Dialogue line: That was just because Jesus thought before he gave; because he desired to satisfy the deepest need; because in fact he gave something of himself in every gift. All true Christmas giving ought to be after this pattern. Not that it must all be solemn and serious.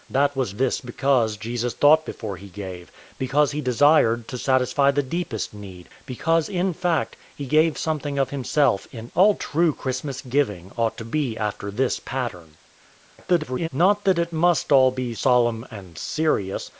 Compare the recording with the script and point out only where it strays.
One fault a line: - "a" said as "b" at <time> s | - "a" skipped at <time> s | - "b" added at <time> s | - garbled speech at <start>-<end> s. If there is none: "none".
- "just" said as "this" at 0.5 s
- "every gift" skipped at 9.1 s
- garbled speech at 13.2-13.7 s